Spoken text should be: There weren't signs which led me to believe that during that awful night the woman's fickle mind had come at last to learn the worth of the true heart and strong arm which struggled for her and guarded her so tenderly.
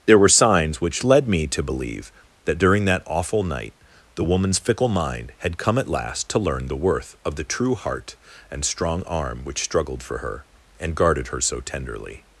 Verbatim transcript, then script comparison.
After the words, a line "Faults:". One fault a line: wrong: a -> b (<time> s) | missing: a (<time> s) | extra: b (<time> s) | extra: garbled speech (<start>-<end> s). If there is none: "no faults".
There were signs which led me to believe that during that awful night the woman's fickle mind had come at last to learn the worth of the true heart and strong arm which struggled for her and guarded her so tenderly.
Faults:
wrong: weren't -> were (0.2 s)